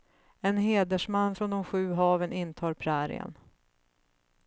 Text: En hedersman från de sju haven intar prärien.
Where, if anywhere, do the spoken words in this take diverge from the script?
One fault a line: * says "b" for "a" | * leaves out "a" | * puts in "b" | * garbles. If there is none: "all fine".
all fine